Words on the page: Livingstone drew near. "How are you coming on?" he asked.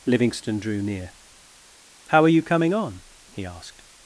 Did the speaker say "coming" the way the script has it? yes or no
yes